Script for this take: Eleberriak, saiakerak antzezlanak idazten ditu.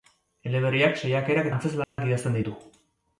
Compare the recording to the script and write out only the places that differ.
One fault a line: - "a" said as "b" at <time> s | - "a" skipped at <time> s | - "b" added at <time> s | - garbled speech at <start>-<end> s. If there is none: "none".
none